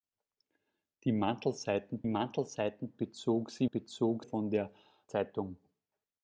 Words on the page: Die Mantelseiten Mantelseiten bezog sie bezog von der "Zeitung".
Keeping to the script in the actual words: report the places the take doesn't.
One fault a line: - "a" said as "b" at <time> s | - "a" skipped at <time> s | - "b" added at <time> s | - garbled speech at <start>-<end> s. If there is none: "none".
none